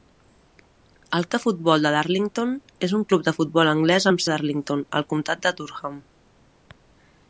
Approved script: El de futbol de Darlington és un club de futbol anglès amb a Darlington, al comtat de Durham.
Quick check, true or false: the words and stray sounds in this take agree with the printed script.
true